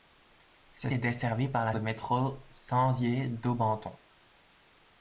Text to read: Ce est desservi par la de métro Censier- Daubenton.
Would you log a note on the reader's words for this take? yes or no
no